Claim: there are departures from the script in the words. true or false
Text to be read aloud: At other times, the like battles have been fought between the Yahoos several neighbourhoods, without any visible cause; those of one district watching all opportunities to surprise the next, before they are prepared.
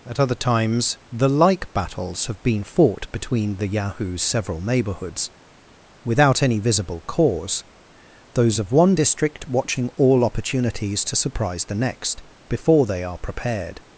false